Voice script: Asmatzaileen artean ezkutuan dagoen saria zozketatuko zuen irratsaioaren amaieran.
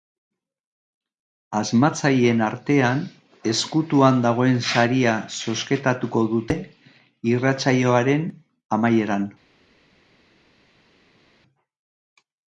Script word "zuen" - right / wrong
wrong